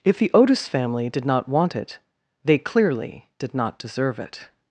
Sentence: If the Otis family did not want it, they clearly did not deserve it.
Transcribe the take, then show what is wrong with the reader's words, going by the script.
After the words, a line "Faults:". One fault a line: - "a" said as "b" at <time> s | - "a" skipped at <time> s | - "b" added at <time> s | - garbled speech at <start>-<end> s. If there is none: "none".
If the Otis family did not want it, they clearly did not deserve it.
Faults:
none